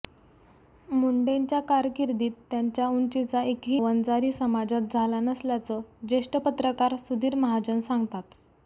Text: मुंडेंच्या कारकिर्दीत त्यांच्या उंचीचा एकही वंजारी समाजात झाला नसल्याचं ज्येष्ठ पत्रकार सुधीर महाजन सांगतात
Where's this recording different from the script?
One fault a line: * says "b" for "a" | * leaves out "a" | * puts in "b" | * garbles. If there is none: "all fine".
all fine